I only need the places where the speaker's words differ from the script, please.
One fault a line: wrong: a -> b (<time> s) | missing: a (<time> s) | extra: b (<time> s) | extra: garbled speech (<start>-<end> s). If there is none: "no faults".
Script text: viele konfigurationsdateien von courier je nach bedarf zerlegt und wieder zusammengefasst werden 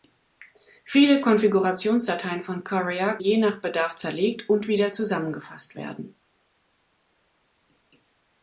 no faults